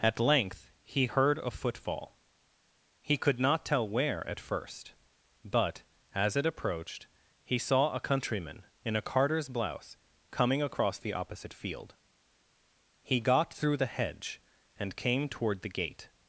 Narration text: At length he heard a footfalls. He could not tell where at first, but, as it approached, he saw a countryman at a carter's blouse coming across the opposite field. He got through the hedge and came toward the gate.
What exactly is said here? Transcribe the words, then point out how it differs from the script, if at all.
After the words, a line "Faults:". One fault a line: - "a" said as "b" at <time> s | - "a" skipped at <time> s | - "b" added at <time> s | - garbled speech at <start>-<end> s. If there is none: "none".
At length he heard a footfall. He could not tell where at first, but, as it approached, he saw a countryman in a carter's blouse coming across the opposite field. He got through the hedge and came toward the gate.
Faults:
- "footfalls" said as "footfall" at 1.5 s
- "at" said as "in" at 8.8 s